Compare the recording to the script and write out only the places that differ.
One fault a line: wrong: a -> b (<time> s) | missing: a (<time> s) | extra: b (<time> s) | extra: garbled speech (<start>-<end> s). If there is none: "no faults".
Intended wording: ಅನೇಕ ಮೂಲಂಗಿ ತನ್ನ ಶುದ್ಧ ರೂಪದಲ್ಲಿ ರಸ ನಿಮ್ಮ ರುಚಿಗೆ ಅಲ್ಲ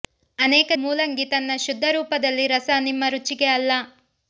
no faults